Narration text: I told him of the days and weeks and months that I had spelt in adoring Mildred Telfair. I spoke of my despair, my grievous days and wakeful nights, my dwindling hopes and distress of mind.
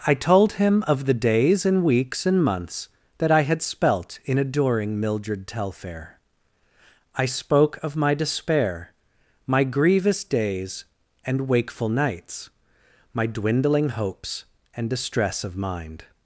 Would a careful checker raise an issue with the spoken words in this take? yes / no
no